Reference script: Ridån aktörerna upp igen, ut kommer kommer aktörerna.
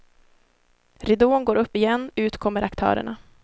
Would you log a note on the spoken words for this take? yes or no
yes